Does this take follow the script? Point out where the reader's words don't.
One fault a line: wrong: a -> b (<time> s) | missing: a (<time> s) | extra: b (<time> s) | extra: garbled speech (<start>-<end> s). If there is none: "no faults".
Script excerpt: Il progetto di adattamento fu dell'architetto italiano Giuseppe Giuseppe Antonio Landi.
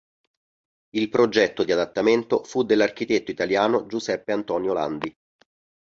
missing: Giuseppe (4.3 s)